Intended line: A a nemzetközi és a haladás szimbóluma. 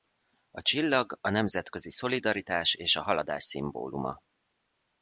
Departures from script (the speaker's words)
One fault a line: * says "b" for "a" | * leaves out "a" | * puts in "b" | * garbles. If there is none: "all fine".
* puts in "csillag"
* puts in "szolidaritás"